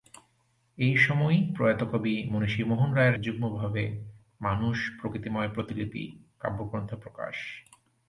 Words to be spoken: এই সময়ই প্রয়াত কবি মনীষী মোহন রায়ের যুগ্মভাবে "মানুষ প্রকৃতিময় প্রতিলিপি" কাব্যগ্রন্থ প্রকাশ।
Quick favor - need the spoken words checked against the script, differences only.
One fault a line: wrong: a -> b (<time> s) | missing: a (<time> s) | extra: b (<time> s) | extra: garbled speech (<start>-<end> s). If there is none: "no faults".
no faults